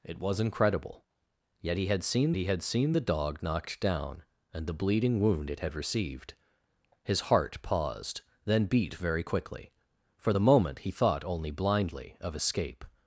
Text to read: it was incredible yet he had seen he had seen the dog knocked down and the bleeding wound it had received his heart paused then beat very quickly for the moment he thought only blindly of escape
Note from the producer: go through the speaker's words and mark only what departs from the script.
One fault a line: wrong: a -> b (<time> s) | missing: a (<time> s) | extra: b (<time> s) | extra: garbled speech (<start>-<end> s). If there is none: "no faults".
no faults